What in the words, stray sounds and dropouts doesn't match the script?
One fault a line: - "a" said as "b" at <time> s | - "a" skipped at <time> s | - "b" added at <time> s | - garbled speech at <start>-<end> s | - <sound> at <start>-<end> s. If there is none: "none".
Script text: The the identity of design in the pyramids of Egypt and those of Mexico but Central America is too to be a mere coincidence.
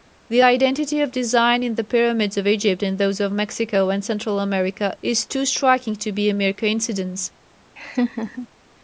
- "the" skipped at 0.4 s
- "but" said as "and" at 3.9 s
- "striking" added at 5.4 s
- laugh at 7.8-8.5 s